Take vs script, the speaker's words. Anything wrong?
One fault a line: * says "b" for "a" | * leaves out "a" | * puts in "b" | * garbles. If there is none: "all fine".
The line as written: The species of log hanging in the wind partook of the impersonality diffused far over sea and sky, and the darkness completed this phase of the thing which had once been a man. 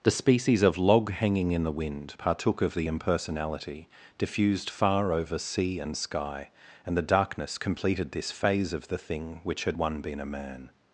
* says "one" for "once"